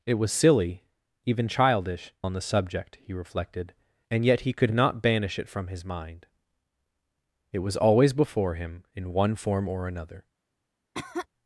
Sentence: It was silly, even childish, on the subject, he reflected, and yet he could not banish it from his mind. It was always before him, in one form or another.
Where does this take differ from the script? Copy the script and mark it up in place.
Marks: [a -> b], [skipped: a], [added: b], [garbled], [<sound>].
It was silly, even childish, on the subject, he reflected, and yet he could not banish it from his mind. It was always before him, in one form or another. [cough]